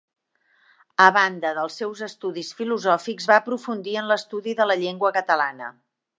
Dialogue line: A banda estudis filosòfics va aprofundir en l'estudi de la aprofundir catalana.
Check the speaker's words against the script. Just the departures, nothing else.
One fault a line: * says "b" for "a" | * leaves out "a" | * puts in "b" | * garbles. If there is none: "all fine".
* puts in "dels seus"
* says "llengua" for "aprofundir"